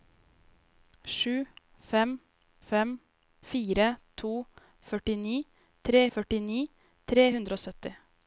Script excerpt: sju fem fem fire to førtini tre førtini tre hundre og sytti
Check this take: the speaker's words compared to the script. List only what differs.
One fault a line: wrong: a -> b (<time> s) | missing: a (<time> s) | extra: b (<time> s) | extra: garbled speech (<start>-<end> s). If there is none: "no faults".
no faults